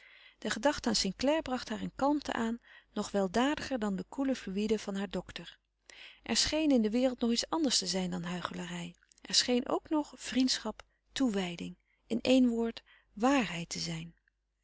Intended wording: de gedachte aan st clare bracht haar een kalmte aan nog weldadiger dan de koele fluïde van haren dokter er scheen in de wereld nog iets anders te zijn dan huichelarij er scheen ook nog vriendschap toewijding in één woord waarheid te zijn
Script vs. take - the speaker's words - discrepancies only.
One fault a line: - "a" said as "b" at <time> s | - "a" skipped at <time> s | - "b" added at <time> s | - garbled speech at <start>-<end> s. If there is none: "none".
none